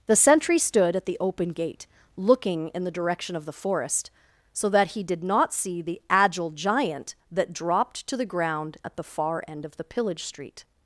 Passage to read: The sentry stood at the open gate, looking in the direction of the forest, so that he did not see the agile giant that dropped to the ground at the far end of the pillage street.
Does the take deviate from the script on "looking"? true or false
false